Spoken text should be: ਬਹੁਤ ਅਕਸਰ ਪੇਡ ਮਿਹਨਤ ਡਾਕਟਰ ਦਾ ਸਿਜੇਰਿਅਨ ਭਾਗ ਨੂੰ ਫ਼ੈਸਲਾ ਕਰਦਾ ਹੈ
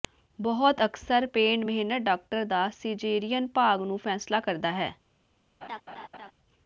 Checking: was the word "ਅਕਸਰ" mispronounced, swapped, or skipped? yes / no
no